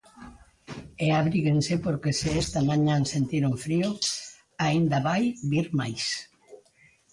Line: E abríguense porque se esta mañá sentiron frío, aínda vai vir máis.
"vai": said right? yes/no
yes